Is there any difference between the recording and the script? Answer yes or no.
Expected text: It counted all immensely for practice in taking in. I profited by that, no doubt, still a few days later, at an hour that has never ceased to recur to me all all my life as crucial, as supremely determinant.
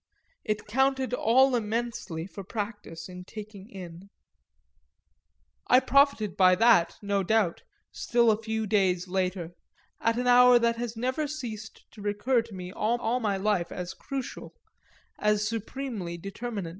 no